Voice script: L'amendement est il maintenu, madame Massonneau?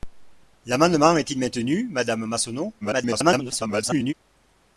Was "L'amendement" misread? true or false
false